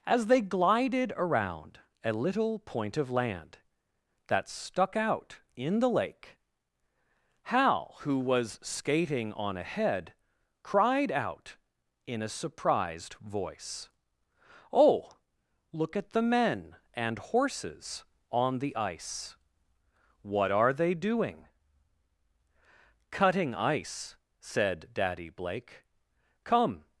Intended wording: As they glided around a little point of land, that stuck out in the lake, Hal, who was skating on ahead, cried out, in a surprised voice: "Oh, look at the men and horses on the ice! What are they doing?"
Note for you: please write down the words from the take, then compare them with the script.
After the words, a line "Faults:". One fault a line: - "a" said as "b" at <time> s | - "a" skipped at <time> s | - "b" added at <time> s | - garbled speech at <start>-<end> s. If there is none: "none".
As they glided around a little point of land, that stuck out in the lake, Hal, who was skating on ahead, cried out, in a surprised voice: "Oh, look at the men and horses on the ice! What are they doing?" "Cutting ice," said Daddy Blake. "Come
Faults:
- "Cutting ice said Daddy Blake Come" added at 23.1 s